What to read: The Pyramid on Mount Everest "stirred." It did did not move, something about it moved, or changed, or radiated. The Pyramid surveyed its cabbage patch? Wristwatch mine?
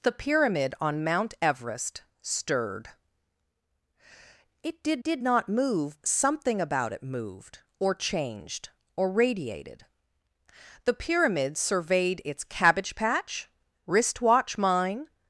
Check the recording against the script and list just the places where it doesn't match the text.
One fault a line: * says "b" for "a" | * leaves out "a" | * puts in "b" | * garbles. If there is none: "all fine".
all fine